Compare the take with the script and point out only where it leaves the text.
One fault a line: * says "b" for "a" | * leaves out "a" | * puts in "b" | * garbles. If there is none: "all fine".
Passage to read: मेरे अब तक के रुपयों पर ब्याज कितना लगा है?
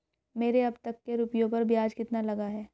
all fine